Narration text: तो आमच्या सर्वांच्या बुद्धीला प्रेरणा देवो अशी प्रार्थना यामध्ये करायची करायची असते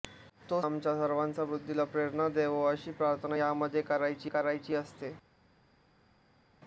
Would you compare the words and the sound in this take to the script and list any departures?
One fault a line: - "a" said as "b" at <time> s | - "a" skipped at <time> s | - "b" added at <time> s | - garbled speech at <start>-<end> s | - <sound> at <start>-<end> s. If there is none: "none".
none